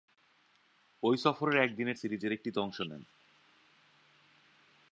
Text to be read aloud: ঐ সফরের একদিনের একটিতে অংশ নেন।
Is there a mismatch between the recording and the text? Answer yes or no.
yes